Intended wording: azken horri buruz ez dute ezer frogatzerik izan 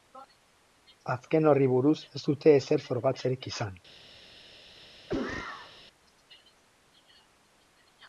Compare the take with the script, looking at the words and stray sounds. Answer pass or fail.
fail